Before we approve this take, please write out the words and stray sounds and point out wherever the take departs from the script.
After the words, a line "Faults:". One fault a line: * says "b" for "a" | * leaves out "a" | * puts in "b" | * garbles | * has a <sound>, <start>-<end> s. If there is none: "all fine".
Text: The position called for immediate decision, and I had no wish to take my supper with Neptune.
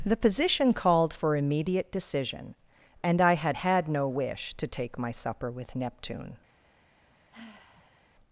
The position called for immediate decision, and I had had no wish to take my supper with Neptune.
Faults:
* puts in "had"
* has a sigh, 7.3-8.0 s